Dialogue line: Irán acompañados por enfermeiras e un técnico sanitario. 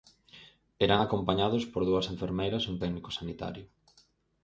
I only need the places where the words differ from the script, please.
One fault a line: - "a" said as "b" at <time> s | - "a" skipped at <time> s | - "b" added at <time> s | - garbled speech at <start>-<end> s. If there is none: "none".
- "dúas" added at 1.9 s